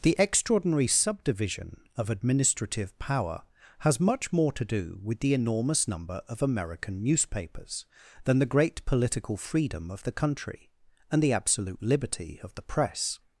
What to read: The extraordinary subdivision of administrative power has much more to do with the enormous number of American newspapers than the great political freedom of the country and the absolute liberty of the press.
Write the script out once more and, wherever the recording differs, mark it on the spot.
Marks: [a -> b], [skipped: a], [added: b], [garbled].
The extraordinary subdivision of administrative power has much more to do with the enormous number of American newspapers than the great political freedom of the country and the absolute liberty of the press.